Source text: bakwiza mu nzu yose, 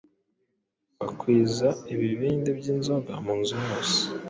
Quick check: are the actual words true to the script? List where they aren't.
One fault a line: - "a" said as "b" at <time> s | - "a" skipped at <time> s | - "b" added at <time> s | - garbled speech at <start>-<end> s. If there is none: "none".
- "ibibindi by'inzoga" added at 1.9 s